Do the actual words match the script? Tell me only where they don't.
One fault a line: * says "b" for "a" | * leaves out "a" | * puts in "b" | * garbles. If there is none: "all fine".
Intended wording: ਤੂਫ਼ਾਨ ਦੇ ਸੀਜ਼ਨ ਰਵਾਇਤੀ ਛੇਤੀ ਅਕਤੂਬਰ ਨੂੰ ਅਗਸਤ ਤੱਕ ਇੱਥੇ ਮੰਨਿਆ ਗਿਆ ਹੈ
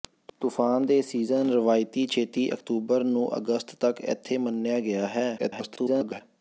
* garbles